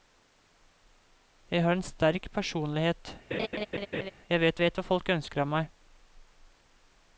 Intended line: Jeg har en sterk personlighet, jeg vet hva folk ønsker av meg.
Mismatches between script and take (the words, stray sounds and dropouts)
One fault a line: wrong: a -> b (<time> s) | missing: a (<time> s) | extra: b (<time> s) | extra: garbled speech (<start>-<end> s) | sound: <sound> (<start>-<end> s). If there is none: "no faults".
sound: laugh (3.3-4.1 s)
extra: vet (4.6 s)